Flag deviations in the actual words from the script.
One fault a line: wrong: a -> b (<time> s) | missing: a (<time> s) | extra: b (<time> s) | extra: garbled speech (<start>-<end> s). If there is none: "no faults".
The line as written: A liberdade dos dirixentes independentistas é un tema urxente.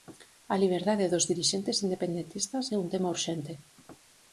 no faults